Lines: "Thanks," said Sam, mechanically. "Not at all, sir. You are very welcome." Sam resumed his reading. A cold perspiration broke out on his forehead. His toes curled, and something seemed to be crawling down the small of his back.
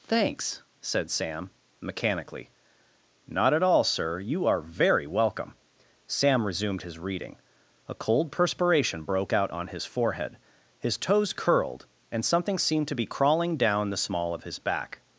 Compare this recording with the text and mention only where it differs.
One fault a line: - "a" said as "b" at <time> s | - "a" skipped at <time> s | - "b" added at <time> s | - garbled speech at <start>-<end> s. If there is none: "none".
none